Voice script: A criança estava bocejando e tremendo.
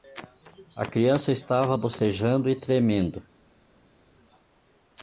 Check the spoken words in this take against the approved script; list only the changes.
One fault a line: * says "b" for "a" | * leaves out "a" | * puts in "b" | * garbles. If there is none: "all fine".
all fine